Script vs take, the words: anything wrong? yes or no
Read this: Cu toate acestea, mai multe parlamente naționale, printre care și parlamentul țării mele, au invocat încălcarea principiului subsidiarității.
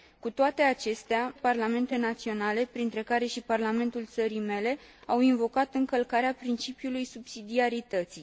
yes